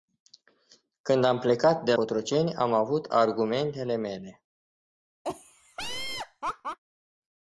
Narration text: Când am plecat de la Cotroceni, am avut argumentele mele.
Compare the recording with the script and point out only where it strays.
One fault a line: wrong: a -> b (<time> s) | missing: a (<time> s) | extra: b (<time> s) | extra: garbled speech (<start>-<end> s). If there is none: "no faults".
missing: la (1.9 s)